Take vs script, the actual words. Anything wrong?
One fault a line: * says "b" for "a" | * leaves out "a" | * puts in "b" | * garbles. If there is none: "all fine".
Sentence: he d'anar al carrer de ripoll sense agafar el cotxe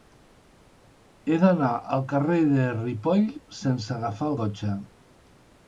* leaves out "el"